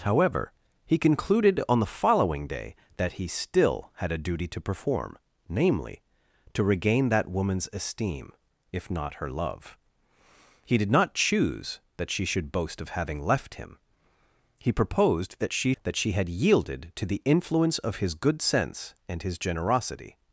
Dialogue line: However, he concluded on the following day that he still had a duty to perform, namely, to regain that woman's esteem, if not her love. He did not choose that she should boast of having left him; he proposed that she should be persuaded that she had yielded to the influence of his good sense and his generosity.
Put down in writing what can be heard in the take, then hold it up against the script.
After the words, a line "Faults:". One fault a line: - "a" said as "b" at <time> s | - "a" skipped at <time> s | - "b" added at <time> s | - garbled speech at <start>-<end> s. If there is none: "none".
However, he concluded on the following day that he still had a duty to perform, namely, to regain that woman's esteem, if not her love. He did not choose that she should boast of having left him; he proposed that she that she had yielded to the influence of his good sense and his generosity.
Faults:
- "should be persuaded" skipped at 15.7 s